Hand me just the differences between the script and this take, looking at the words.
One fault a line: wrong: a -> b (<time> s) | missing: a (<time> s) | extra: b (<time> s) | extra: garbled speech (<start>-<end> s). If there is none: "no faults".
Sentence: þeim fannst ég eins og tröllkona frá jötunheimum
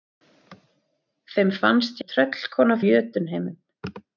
missing: ég eins (2.0 s)
missing: frá (2.8 s)